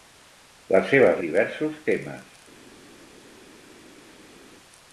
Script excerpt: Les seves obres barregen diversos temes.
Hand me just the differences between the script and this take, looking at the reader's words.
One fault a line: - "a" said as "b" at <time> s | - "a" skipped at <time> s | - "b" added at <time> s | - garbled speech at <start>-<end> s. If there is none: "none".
- "obres barregen" skipped at 1.2 s